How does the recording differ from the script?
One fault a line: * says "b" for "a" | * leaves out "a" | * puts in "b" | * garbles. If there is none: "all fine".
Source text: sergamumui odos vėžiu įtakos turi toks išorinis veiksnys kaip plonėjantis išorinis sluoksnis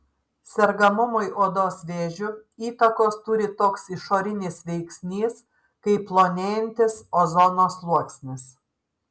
* says "ozono" for "išorinis"